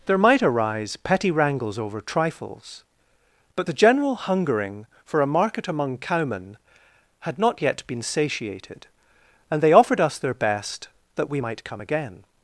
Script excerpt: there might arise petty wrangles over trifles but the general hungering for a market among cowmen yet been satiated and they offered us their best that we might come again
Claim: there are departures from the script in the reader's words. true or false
true